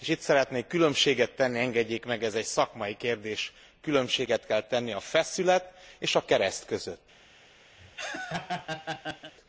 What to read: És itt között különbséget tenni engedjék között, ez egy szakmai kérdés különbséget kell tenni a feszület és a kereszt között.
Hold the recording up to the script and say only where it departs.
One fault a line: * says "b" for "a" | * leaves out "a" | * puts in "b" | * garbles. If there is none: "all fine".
* says "szeretnék" for "között"
* says "meg" for "között"